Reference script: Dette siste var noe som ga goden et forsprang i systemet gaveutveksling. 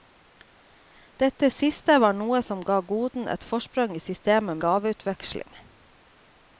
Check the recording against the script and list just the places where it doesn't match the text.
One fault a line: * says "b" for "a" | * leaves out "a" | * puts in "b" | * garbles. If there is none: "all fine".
all fine